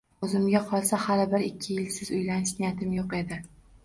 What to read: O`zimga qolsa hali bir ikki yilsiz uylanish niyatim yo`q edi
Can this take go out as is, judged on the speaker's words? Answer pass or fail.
pass